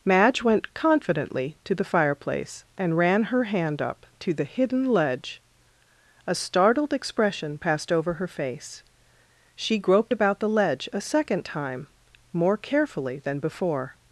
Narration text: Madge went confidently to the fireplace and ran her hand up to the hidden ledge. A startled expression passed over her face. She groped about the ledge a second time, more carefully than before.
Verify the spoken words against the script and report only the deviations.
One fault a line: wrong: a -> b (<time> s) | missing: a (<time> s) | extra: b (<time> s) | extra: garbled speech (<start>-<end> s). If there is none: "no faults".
no faults